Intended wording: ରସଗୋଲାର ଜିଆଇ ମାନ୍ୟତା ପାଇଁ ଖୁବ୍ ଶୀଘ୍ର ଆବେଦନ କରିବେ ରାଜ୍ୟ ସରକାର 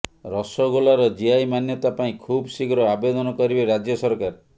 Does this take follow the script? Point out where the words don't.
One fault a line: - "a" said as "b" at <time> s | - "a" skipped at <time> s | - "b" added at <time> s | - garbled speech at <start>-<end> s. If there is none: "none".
none